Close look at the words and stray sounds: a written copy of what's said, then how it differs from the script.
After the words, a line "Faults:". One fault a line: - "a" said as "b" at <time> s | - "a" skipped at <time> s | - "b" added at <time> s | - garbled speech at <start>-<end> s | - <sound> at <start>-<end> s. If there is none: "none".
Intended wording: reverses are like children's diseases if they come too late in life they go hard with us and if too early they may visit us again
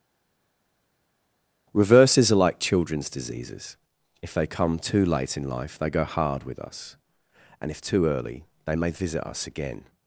reverses are like children's diseases if they come too late in life they go hard with us and if too early they may visit us again
Faults:
none